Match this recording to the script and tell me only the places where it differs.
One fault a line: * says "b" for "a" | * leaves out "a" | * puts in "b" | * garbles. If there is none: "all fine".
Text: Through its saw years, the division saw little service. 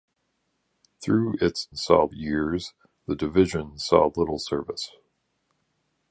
all fine